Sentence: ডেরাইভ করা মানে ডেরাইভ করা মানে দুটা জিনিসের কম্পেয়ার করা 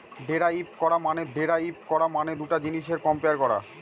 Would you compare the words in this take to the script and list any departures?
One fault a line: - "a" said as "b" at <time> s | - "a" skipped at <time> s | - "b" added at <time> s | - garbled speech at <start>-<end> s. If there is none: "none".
none